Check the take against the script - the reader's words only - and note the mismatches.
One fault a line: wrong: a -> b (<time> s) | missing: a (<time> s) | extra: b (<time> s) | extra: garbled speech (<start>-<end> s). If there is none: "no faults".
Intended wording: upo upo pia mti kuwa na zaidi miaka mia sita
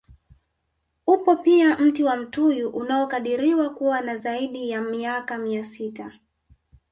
missing: upo (1.4 s)
extra: wa mtuyu unaokadiriwa (2.0 s)
extra: ya (4.7 s)